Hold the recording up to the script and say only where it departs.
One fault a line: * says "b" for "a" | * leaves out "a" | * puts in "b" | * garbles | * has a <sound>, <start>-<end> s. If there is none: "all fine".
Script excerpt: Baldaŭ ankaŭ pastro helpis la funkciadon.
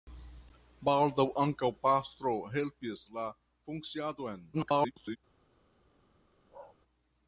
* garbles
* has a bark, 6.5-6.8 s